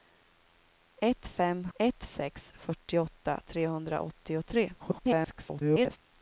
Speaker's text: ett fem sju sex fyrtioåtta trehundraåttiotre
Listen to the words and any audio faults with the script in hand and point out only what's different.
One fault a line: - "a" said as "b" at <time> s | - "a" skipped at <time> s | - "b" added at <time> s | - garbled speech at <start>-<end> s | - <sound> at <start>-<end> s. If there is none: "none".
- "sju" said as "ett" at 1.8 s
- garbled speech at 4.8-6.0 s